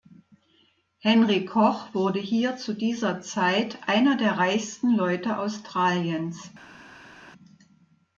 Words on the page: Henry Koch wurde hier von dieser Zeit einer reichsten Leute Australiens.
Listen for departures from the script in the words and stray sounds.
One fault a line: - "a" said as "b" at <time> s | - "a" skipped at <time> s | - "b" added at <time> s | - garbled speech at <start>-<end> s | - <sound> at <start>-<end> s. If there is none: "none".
- "von" said as "zu" at 2.6 s
- "der" added at 4.2 s